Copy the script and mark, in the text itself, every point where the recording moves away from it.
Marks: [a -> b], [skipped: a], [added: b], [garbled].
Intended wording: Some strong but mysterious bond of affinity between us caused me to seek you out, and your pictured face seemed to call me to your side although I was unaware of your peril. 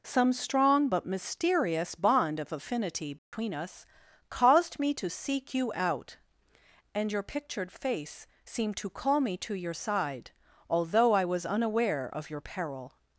Some strong but mysterious bond of affinity between us caused me to seek you out, and your pictured face seemed to call me to your side although I was unaware of your peril.